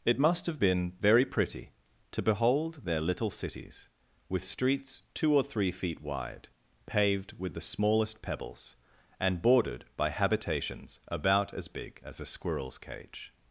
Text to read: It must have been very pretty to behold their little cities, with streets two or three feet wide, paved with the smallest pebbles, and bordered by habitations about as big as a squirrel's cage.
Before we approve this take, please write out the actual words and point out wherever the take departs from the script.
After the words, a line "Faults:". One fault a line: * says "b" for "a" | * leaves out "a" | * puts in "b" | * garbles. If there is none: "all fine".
It must have been very pretty to behold their little cities, with streets two or three feet wide, paved with the smallest pebbles, and bordered by habitations about as big as a squirrel's cage.
Faults:
all fine